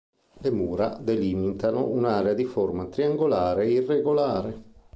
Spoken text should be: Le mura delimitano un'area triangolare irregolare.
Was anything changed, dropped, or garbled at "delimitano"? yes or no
no